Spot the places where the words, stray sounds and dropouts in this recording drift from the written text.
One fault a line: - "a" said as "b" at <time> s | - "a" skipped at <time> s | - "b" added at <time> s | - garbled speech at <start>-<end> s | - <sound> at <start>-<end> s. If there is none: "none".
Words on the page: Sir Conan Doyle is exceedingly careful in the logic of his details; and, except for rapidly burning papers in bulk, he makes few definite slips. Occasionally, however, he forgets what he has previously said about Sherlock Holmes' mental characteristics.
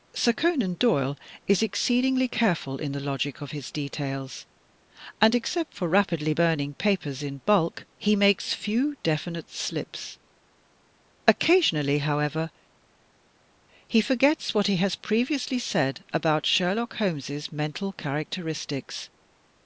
none